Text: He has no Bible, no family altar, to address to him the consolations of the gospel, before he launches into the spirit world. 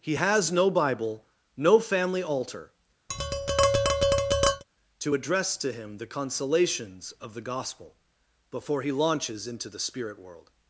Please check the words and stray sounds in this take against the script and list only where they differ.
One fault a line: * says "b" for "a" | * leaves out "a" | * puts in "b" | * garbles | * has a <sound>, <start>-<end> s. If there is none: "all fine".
* has a tap, 3.1-4.6 s